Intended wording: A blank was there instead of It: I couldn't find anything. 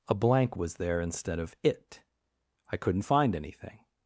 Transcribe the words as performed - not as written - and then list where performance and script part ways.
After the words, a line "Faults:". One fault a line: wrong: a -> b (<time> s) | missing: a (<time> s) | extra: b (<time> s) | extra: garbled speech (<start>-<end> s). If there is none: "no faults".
A blank was there instead of It: I couldn't find anything.
Faults:
no faults